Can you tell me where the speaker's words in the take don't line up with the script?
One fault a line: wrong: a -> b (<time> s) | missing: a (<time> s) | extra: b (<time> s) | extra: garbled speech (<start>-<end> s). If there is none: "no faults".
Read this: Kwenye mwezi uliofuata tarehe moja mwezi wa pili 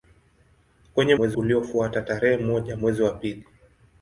no faults